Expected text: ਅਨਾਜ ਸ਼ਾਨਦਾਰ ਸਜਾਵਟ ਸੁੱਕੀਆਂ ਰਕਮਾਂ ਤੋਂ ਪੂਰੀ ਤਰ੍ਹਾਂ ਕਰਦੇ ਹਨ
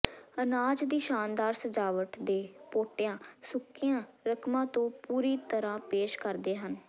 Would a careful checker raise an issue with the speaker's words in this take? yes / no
yes